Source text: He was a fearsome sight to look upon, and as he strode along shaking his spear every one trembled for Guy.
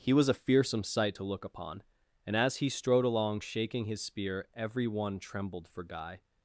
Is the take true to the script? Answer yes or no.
yes